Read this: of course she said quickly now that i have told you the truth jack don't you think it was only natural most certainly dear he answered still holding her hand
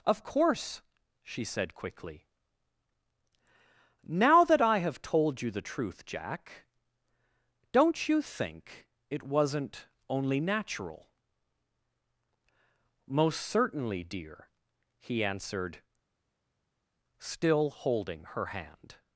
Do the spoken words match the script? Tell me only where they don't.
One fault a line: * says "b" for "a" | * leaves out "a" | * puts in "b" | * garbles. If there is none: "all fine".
* says "wasn't" for "was"